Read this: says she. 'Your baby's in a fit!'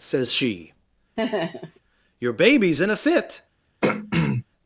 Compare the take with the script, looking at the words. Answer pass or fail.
pass